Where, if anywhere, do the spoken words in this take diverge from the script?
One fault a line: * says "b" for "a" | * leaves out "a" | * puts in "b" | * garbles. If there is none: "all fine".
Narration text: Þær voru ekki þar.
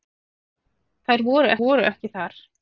* puts in "voru"